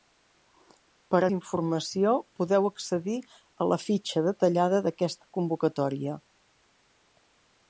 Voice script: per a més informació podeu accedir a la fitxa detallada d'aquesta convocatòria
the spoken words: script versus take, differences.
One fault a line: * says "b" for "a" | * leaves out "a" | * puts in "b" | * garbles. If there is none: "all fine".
* leaves out "més"